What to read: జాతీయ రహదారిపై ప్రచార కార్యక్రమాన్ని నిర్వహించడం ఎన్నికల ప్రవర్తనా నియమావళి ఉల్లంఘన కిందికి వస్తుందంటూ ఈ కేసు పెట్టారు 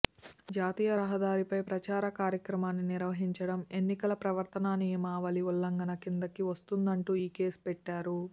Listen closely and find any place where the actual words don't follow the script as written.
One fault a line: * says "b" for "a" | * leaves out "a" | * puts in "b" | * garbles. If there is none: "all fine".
all fine